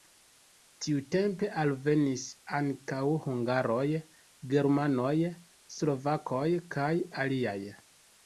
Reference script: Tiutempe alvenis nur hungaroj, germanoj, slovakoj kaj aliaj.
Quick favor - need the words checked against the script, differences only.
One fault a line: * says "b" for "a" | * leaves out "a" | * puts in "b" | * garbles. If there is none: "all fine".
* says "ankaŭ" for "nur"